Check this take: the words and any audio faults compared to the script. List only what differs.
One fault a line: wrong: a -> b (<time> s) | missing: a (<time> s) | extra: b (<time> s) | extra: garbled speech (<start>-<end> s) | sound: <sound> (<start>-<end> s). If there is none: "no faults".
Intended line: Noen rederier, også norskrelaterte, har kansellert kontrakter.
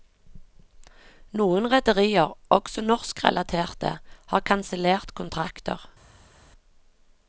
no faults